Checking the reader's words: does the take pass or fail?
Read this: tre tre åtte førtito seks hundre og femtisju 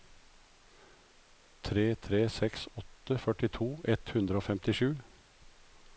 fail